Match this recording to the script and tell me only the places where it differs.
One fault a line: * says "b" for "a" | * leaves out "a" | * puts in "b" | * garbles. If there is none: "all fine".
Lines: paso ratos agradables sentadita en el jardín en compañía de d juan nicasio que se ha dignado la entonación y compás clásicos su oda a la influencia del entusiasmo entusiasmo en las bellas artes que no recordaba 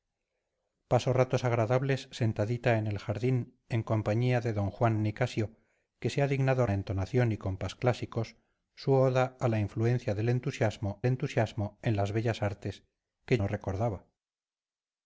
all fine